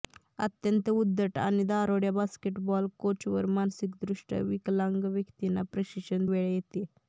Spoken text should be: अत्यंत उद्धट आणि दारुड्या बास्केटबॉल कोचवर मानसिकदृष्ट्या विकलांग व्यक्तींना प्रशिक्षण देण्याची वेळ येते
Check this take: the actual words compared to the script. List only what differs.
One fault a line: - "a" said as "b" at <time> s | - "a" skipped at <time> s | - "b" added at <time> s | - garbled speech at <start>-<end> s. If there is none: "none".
- "देण्याची" skipped at 6.2 s